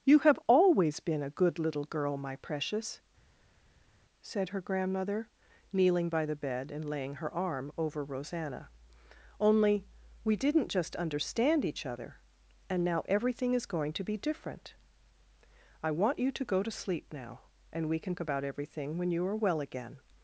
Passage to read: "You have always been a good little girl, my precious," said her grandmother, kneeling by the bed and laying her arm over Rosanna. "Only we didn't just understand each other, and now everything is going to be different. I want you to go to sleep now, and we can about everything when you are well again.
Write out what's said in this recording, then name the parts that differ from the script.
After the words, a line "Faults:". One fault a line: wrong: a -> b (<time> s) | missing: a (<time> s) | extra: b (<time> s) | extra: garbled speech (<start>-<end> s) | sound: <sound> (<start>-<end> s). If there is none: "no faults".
"You have always been a good little girl, my precious," said her grandmother, kneeling by the bed and laying her arm over Rosanna. "Only we didn't just understand each other, and now everything is going to be different. I want you to go to sleep now, and we can about everything when you are well again.
Faults:
no faults